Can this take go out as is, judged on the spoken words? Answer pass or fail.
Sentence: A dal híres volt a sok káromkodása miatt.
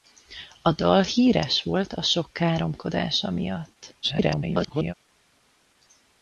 fail